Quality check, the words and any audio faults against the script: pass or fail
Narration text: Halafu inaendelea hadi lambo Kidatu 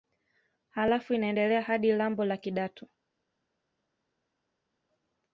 fail